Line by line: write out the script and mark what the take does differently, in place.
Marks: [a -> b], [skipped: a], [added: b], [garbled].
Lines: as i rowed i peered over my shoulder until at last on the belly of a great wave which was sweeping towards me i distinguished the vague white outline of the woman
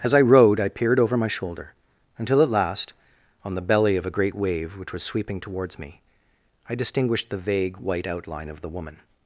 as i rowed i peered over my shoulder until at last on the belly of a great wave which was sweeping towards me i distinguished the vague white outline of the woman